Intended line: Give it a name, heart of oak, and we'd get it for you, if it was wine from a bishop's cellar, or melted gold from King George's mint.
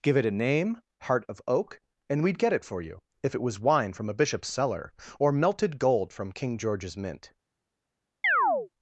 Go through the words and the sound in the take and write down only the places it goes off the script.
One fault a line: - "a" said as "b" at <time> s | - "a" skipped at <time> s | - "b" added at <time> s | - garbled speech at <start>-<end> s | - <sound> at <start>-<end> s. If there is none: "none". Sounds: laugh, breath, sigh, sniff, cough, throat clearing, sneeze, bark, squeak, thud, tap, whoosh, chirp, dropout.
- chirp at 8.2-8.7 s